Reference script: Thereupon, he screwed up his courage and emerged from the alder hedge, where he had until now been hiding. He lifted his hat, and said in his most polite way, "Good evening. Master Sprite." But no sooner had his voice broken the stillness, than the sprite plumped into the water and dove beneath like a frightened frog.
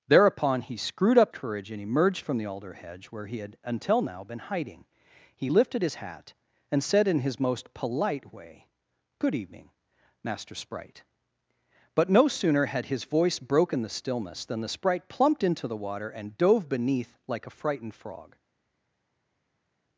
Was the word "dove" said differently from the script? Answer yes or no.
no